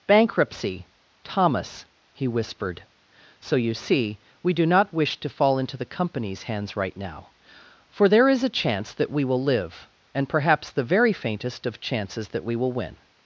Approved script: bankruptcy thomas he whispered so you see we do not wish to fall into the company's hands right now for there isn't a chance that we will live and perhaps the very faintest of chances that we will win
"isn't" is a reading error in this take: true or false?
true